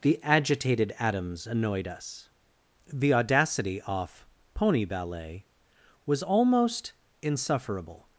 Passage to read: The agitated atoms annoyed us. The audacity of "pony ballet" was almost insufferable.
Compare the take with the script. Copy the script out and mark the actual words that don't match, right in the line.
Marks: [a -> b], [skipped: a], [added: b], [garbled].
The agitated atoms annoyed us. The audacity [of -> off] "pony ballet" was almost insufferable.